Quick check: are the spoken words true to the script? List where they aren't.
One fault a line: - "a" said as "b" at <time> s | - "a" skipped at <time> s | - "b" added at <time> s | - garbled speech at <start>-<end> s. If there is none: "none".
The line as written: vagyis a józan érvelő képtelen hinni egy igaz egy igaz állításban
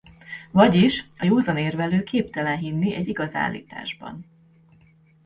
- "egy igaz" skipped at 3.3 s